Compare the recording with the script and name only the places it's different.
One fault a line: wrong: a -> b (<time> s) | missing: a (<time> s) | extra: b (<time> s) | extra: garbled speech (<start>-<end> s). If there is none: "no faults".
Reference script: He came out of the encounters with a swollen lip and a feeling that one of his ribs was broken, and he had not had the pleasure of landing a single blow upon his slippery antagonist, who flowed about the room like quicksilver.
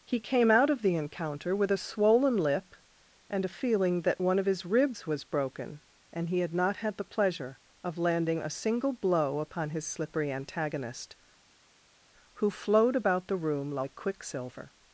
wrong: encounters -> encounter (0.9 s)